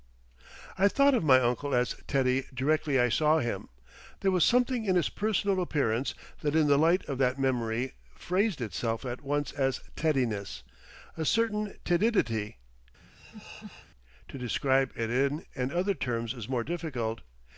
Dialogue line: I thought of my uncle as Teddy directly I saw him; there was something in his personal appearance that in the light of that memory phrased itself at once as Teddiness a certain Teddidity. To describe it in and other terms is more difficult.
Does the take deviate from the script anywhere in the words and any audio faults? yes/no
yes